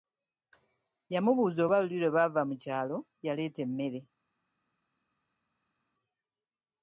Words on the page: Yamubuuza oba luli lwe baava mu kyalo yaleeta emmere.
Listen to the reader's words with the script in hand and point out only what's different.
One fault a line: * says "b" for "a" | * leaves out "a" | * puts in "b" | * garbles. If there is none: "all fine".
all fine